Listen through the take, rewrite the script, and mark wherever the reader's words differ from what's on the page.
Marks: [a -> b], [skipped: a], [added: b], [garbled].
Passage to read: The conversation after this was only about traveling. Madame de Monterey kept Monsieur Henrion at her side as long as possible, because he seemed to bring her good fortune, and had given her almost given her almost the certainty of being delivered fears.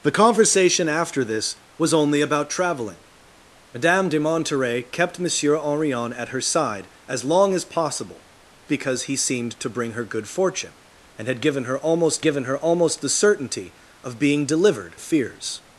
The conversation after this was only about traveling. Madame de Monterey kept Monsieur Henrion at her side as long as possible, because he seemed to bring her good fortune, and had given her almost given her almost the certainty of being delivered fears.